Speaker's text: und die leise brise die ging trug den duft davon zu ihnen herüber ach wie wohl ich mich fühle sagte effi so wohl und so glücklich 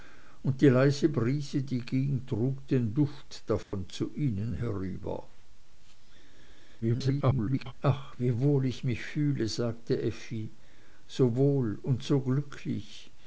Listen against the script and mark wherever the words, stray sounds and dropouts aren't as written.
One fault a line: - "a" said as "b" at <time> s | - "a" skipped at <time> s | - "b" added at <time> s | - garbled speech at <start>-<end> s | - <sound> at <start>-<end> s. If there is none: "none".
- dropout at 3.6-3.7 s
- garbled speech at 6.8-7.7 s